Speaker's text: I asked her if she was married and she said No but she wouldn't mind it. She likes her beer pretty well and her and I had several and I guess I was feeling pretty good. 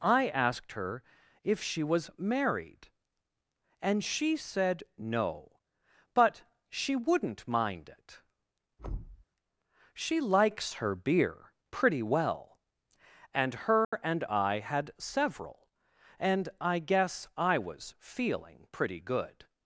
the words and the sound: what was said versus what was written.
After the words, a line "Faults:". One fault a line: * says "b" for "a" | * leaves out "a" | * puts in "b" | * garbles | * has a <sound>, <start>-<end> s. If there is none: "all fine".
I asked her if she was married and she said No but she wouldn't mind it. She likes her beer pretty well and her and I had several and I guess I was feeling pretty good.
Faults:
* has a thud, 8.8-9.2 s
* has a dropout, 13.8-13.9 s